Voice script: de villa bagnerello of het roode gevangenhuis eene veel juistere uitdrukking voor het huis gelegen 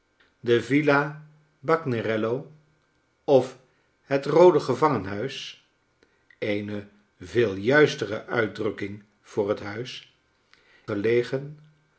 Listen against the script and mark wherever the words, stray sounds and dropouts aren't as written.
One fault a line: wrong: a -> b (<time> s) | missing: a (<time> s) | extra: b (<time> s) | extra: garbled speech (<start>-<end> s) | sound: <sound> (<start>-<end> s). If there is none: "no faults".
no faults